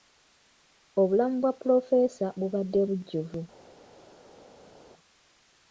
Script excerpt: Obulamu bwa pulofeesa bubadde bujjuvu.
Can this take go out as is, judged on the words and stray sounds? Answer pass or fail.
pass